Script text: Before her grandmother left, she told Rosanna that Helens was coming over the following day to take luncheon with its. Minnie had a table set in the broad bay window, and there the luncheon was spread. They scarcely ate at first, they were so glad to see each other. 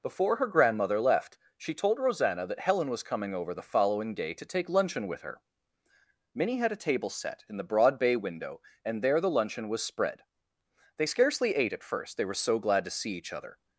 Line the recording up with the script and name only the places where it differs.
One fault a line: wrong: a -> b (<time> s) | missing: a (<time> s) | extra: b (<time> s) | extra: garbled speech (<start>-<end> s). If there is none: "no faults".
wrong: Helens -> Helen (2.6 s)
wrong: its -> her (5.2 s)